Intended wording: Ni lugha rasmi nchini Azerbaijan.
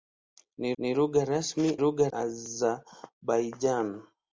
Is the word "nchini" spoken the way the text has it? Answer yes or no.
no